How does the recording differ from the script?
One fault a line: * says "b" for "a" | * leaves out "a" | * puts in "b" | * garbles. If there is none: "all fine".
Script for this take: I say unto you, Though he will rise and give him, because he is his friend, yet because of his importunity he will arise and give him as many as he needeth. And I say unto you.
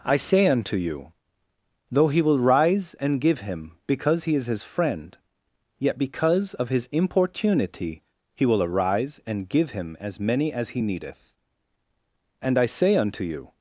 all fine